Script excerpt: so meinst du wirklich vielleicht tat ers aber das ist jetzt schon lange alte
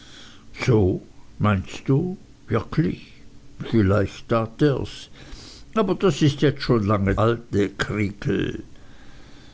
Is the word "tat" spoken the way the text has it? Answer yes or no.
yes